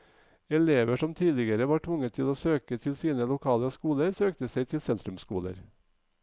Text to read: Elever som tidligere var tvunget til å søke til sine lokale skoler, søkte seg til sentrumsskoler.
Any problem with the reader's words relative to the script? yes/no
no